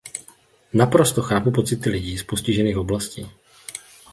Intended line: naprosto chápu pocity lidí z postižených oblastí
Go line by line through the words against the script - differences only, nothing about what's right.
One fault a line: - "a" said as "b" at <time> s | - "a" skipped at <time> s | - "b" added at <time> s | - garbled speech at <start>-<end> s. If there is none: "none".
none